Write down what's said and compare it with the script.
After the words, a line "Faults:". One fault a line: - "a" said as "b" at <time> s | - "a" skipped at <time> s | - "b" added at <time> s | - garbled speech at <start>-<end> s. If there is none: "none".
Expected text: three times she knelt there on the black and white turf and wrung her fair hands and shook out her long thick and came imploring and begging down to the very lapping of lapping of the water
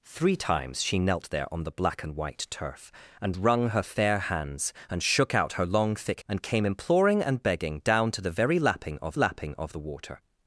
three times she knelt there on the black and white turf and wrung her fair hands and shook out her long thick and came imploring and begging down to the very lapping of lapping of the water
Faults:
none